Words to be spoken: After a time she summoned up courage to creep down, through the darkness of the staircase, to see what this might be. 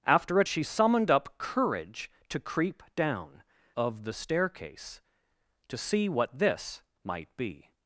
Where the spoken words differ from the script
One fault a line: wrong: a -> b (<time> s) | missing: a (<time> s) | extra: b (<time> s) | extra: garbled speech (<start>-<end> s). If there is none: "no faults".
missing: time (0.5 s)
missing: through the darkness (3.4 s)